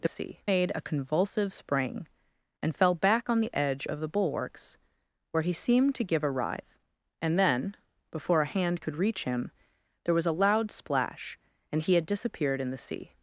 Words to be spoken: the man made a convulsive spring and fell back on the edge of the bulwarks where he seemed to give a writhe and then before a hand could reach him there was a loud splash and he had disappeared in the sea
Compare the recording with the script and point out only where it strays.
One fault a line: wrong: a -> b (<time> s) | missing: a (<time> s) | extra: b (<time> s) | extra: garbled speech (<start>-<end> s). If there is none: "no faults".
wrong: man -> sea (0.0 s)